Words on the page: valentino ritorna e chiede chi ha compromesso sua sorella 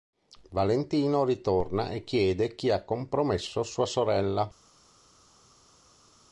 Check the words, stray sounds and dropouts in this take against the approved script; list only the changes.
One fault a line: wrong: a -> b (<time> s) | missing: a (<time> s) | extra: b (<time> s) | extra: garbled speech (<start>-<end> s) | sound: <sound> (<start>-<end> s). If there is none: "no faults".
no faults